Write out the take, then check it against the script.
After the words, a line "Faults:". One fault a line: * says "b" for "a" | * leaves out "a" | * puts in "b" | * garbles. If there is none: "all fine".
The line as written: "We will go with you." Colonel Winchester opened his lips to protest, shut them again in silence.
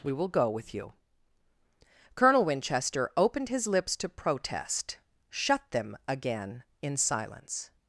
"We will go with you." Colonel Winchester opened his lips to protest, shut them again in silence.
Faults:
all fine